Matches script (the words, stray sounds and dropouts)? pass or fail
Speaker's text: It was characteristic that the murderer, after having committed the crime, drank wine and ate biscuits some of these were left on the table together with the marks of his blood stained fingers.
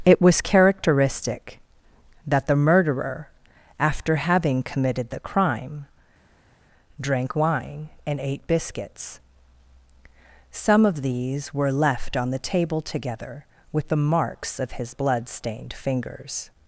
pass